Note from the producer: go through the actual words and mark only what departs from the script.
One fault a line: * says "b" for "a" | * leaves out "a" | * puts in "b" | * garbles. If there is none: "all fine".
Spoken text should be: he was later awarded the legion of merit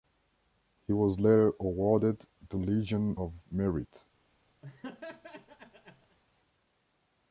all fine